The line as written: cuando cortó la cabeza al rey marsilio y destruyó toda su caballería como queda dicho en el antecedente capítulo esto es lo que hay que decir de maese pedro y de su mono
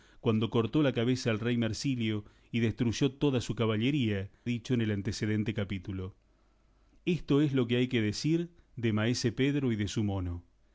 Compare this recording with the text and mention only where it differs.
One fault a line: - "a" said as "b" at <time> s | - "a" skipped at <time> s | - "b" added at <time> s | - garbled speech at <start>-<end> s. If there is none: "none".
- "como queda" skipped at 4.3 s